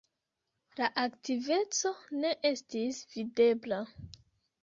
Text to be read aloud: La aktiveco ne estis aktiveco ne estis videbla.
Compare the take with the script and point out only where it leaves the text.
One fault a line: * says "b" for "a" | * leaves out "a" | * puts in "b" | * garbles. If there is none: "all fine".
* leaves out "aktiveco ne estis"